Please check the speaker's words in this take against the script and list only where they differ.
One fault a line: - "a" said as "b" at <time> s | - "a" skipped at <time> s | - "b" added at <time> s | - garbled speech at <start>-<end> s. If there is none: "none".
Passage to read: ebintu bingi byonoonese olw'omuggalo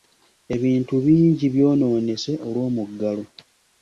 none